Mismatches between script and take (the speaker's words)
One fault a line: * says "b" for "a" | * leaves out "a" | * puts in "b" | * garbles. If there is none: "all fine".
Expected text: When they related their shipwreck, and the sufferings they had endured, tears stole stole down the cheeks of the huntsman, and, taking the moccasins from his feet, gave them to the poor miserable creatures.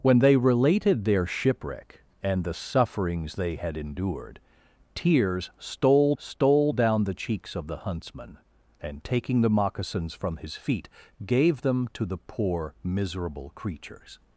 all fine